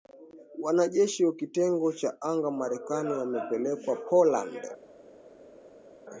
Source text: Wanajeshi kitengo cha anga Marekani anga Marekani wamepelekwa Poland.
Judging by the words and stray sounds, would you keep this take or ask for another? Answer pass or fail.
fail